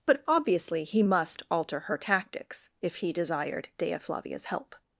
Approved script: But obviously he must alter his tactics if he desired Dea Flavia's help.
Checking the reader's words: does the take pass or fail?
fail